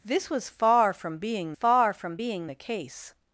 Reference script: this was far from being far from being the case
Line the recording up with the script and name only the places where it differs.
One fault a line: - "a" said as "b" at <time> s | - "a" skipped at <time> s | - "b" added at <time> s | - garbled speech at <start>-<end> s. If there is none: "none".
none